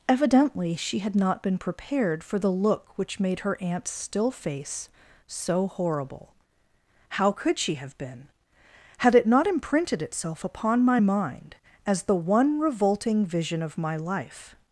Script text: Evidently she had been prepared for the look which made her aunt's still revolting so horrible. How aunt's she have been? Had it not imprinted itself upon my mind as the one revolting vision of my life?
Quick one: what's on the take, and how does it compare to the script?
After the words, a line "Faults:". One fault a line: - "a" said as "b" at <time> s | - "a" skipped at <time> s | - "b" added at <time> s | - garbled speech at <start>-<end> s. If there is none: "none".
Evidently she had not been prepared for the look which made her aunt's still face so horrible. How could she have been? Had it not imprinted itself upon my mind as the one revolting vision of my life?
Faults:
- "not" added at 1.1 s
- "revolting" said as "face" at 4.3 s
- "aunt's" said as "could" at 7.3 s